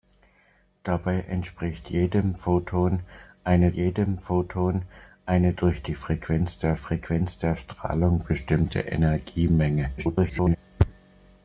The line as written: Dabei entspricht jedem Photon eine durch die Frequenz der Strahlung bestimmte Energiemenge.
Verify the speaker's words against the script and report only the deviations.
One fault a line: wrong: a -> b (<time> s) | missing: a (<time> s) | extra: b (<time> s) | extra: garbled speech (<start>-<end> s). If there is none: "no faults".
extra: jedem Photon eine (3.7 s)
extra: Frequenz der (6.8 s)
extra: garbled speech (10.0-10.6 s)